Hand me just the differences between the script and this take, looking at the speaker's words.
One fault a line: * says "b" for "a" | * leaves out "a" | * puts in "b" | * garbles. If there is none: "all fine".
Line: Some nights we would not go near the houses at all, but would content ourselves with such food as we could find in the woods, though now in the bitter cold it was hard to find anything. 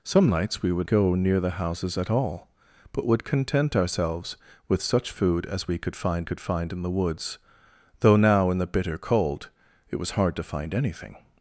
* leaves out "not"
* puts in "could find"